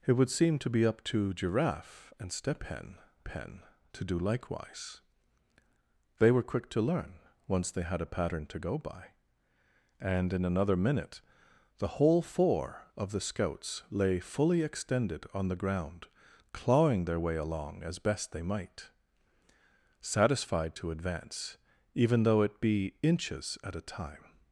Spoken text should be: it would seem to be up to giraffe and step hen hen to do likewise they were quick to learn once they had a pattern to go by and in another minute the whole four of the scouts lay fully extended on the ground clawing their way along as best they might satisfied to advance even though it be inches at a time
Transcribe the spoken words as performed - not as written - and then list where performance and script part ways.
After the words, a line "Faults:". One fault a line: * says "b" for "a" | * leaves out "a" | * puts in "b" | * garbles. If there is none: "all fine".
it would seem to be up to giraffe and step hen hen to do likewise they were quick to learn once they had a pattern to go by and in another minute the whole four of the scouts lay fully extended on the ground clawing their way along as best they might satisfied to advance even though it be inches at a time
Faults:
all fine